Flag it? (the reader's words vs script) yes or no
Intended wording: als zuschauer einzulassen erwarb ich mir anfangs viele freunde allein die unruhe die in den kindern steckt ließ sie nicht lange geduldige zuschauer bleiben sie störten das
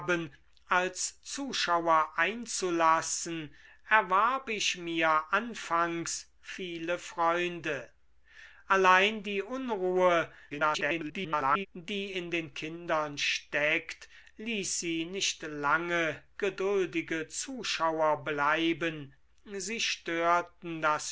yes